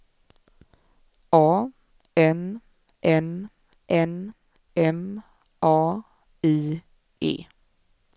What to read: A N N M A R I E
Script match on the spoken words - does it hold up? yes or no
no